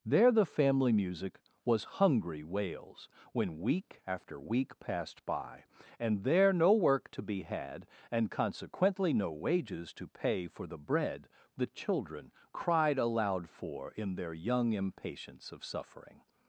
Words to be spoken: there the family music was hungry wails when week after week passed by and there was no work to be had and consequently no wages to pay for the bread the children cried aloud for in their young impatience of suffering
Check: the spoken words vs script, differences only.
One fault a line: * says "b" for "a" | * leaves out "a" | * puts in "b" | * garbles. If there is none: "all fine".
* leaves out "was"